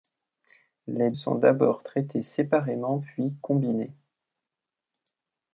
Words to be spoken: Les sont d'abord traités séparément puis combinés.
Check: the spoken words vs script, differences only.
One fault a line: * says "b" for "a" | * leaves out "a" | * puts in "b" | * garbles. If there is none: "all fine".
all fine